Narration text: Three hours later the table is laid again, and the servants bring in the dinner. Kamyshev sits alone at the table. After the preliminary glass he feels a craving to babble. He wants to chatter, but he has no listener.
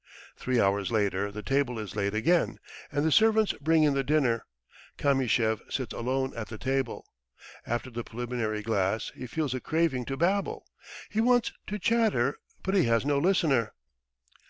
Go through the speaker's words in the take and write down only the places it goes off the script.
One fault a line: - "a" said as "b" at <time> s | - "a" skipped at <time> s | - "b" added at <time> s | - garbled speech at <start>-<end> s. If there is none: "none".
none